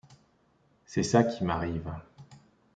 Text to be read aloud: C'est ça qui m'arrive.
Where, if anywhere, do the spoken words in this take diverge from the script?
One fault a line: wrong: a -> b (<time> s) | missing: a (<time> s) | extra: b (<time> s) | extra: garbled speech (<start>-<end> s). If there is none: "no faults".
no faults